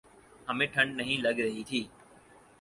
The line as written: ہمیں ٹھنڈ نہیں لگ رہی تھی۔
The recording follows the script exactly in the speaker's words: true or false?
true